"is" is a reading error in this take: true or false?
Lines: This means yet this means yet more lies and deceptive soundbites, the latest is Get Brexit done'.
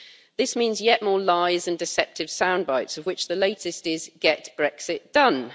false